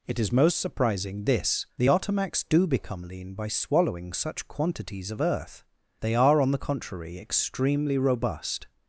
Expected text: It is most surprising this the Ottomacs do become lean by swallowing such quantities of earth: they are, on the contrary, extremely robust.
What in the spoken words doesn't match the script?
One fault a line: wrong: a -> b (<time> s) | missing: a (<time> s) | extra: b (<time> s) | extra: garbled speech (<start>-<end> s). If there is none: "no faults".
no faults